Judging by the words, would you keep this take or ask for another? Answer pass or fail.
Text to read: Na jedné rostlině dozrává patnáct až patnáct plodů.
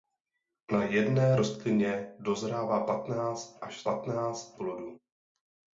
pass